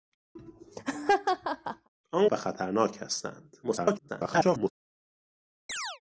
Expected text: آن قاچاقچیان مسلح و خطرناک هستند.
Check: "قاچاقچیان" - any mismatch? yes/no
yes